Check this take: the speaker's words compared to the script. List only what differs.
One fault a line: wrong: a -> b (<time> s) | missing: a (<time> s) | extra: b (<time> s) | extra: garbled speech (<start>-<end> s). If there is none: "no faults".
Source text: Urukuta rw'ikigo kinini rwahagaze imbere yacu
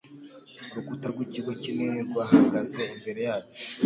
no faults